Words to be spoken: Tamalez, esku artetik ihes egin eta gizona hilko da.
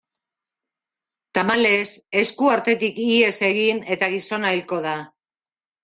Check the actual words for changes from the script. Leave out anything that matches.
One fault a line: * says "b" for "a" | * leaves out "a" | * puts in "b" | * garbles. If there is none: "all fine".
all fine